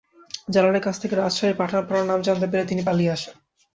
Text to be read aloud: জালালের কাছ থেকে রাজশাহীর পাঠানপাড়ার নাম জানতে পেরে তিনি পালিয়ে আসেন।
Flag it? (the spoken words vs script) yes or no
no